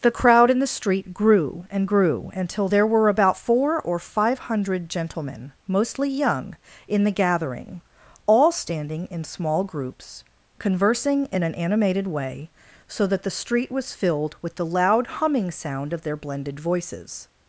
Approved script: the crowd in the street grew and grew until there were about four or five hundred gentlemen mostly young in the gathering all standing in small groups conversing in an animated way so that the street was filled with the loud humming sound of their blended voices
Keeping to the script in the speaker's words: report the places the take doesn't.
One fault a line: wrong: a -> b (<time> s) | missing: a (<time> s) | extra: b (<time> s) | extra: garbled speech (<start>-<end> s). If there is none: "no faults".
no faults